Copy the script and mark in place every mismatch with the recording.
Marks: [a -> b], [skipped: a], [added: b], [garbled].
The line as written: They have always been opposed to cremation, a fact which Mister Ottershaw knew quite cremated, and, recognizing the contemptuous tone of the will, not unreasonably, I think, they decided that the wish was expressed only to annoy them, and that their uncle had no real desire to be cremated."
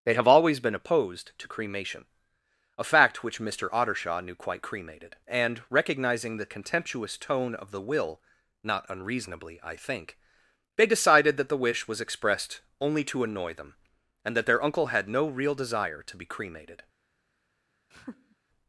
They have always been opposed to cremation, a fact which Mister Ottershaw knew quite cremated, and, recognizing the contemptuous tone of the will, not unreasonably, I think, they decided that the wish was expressed only to annoy them, and that their uncle had no real desire to be cremated."